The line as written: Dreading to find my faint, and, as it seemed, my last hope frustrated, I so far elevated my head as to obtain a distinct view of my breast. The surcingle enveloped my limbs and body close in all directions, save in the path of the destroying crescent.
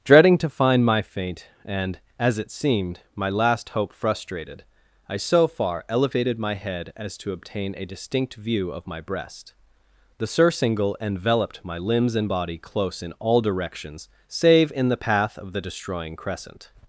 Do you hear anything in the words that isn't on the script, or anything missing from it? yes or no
no